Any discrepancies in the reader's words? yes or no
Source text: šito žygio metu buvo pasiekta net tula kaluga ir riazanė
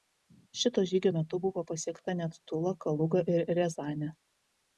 no